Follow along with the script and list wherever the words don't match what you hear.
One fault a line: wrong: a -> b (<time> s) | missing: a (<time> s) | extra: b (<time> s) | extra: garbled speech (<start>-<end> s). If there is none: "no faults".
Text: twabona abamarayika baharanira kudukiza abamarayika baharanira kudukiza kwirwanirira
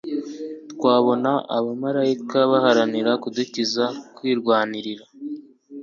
missing: abamarayika baharanira kudukiza (3.8 s)